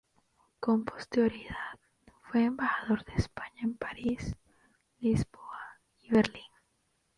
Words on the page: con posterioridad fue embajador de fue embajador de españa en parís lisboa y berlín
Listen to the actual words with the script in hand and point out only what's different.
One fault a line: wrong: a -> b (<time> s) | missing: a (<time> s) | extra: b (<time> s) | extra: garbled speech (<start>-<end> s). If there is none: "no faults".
missing: fue embajador de (3.1 s)